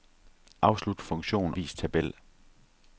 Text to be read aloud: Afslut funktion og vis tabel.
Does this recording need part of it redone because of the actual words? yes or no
yes